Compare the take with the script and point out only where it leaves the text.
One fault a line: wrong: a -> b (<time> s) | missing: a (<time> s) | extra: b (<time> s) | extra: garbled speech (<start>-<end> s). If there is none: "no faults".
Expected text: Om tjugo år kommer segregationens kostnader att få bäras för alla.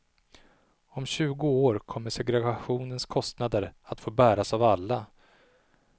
wrong: för -> av (4.5 s)